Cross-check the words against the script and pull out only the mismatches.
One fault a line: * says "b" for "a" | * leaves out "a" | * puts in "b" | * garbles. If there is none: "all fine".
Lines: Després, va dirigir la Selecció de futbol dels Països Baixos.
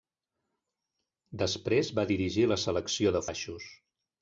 * leaves out "futbol dels Països"